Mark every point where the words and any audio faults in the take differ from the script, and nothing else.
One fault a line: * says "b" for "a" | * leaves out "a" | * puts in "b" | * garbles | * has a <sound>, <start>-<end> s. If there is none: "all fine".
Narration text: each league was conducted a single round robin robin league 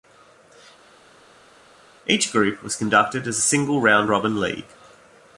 * says "group" for "league"
* puts in "as"
* leaves out "robin"